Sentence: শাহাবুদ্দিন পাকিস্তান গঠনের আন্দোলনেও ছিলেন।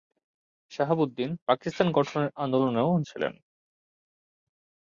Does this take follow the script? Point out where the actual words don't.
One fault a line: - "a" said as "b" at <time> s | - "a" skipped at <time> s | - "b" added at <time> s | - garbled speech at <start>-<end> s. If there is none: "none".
none